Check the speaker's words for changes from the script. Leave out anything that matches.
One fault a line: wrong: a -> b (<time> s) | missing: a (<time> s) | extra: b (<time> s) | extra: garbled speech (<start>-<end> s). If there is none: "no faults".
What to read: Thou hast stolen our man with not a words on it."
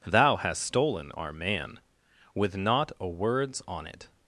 no faults